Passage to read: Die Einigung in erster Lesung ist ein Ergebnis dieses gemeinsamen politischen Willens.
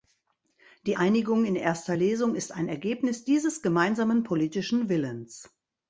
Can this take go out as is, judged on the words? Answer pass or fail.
pass